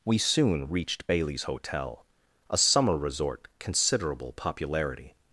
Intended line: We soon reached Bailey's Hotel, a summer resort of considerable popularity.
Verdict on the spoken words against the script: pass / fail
fail